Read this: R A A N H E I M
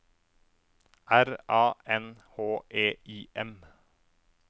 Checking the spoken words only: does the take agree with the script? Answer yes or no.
no